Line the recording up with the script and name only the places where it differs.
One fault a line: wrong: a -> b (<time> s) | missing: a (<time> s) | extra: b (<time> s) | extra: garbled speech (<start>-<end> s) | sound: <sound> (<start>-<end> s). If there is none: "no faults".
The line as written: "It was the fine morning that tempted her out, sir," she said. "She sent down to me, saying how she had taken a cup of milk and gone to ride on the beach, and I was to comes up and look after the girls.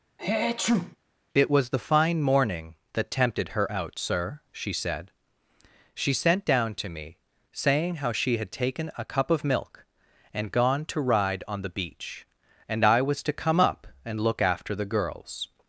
sound: sneeze (0.2-1.0 s)
wrong: comes -> come (13.3 s)